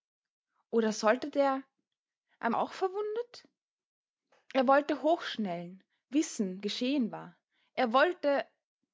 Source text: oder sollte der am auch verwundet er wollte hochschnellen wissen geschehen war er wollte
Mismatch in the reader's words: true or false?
false